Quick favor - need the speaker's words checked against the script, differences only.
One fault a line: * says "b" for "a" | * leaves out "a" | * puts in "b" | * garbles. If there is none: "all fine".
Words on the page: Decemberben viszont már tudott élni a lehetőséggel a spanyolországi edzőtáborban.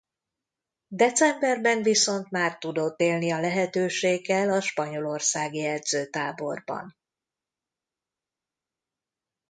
all fine